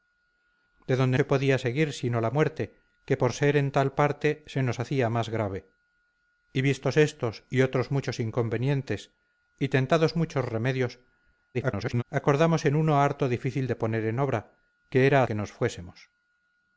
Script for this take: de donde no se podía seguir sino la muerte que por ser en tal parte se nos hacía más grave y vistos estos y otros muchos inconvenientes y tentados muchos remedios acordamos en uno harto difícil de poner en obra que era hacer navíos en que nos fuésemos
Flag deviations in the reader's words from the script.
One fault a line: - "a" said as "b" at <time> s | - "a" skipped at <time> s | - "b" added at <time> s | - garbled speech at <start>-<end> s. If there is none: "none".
- "no" skipped at 1.2 s
- garbled speech at 11.5-12.0 s
- "hacer navíos en" skipped at 15.2 s